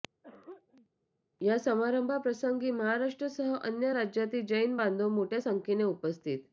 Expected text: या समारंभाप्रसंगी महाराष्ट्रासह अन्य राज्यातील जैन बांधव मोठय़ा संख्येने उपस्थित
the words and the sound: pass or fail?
fail